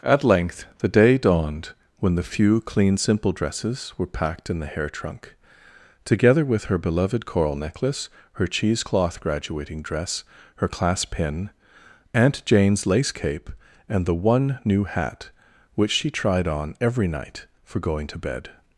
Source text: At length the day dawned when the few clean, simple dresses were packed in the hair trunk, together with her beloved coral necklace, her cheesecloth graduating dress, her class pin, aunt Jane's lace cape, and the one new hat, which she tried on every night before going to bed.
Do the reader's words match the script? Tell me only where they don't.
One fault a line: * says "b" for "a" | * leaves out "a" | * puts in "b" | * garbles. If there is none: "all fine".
* says "for" for "before"